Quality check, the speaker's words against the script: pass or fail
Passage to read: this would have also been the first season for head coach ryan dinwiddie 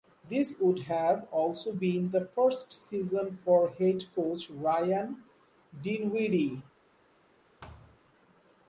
pass